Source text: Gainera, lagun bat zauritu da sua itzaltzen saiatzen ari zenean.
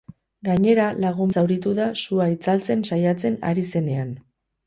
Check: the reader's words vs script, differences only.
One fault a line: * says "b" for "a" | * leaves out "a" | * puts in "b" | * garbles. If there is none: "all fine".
* leaves out "bat"